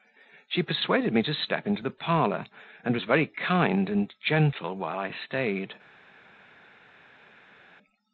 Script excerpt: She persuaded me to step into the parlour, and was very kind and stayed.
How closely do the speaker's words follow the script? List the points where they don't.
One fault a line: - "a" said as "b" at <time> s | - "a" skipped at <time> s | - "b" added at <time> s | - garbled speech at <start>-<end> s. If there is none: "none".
- "gentle while I" added at 4.2 s